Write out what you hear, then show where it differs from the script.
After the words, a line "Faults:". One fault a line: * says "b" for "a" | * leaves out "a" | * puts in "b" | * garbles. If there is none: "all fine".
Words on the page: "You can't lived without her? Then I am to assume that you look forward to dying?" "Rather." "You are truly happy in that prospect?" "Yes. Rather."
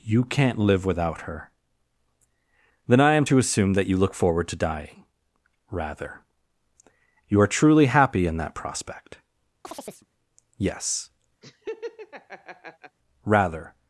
"You can't live without her? Then I am to assume that you look forward to dying?" "Rather." "You are truly happy in that prospect?" "Yes. Rather."
Faults:
* says "live" for "lived"